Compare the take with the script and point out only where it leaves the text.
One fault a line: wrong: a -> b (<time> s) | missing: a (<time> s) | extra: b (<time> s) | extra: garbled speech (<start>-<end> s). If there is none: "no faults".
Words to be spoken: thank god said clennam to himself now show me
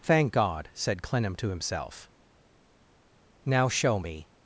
no faults